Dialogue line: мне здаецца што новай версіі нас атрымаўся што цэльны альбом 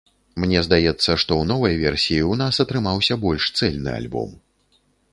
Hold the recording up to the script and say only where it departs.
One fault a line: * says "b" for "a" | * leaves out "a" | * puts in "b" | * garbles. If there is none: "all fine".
* puts in "ў"
* puts in "ў"
* says "больш" for "што"